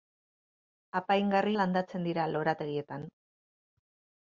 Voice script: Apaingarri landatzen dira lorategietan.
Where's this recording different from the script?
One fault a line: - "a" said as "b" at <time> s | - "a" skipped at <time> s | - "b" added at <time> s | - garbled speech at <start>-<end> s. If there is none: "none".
none